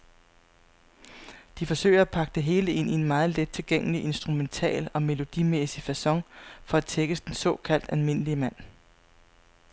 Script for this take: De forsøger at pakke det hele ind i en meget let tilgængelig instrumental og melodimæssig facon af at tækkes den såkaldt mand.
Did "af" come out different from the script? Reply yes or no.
yes